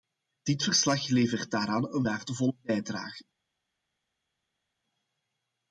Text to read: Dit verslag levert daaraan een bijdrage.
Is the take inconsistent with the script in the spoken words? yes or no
yes